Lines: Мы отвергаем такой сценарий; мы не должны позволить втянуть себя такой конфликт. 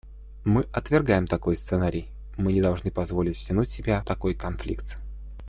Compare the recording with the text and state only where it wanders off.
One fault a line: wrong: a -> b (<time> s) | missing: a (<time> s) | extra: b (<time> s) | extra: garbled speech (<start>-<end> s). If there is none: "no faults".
no faults